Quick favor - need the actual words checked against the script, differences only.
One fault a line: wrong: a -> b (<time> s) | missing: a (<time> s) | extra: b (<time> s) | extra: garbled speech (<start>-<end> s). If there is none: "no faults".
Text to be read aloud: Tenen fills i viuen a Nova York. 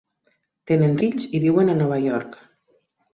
no faults